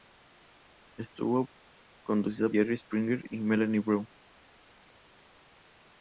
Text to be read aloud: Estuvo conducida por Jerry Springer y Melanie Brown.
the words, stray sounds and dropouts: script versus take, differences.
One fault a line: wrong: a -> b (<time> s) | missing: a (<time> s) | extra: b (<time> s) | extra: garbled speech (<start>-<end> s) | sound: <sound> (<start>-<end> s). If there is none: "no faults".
missing: por (2.5 s)